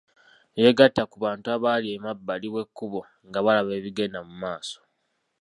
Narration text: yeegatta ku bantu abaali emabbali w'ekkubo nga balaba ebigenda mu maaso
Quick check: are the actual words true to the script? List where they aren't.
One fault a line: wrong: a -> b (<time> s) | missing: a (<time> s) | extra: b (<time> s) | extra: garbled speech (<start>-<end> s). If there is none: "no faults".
no faults